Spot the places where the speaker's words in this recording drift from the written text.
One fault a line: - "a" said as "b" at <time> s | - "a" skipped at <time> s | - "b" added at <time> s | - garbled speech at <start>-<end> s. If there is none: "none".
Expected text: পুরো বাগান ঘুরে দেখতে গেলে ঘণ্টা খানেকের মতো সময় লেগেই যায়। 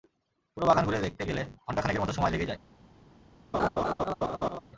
none